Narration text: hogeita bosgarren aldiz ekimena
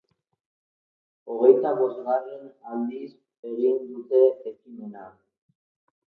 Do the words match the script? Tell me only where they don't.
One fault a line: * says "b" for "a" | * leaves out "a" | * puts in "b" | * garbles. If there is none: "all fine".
* puts in "egin dute"